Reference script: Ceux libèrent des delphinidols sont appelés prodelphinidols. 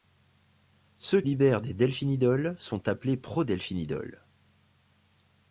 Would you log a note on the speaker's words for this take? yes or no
no